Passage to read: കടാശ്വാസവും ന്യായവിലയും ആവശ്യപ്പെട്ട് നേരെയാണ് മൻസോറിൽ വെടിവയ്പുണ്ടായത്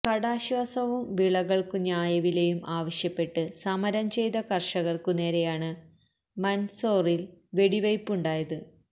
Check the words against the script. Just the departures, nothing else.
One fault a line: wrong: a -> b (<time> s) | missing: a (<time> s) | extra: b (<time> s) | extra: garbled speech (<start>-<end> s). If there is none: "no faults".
extra: വിളകൾക്കു (1.1 s)
extra: സമരം ചെയ്ത കർഷകർക്കു (3.6 s)